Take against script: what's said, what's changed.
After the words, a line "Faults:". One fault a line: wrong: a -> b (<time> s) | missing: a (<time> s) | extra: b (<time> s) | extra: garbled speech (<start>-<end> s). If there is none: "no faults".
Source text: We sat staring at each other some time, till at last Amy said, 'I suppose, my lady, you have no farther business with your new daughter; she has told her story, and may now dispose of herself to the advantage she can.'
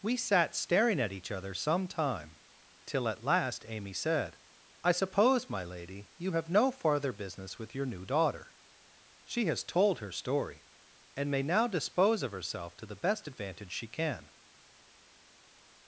We sat staring at each other some time, till at last Amy said, 'I suppose, my lady, you have no farther business with your new daughter; she has told her story, and may now dispose of herself to the best advantage she can.'
Faults:
extra: best (13.0 s)